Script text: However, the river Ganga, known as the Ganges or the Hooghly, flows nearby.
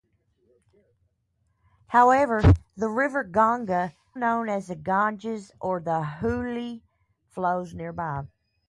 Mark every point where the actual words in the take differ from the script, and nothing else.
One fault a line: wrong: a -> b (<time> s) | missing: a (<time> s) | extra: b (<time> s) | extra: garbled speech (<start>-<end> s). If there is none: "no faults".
no faults